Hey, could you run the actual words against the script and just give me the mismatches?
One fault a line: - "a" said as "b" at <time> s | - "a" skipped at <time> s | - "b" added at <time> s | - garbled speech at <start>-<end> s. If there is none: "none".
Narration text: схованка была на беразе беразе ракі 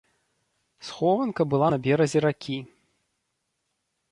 - "беразе" skipped at 2.2 s